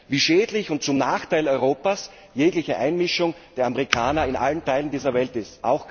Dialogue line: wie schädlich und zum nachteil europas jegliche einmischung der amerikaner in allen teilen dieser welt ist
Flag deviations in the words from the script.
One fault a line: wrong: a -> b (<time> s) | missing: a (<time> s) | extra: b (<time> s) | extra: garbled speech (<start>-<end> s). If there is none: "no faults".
no faults